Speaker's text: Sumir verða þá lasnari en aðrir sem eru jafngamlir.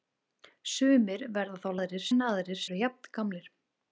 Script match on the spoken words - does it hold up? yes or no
no